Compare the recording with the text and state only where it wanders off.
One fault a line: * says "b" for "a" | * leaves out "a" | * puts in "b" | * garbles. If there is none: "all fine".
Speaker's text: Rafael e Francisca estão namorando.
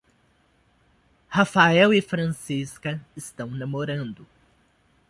all fine